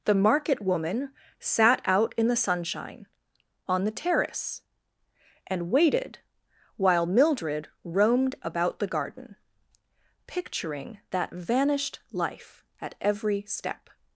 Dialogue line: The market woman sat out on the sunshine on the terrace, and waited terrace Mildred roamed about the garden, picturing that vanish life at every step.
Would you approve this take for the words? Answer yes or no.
no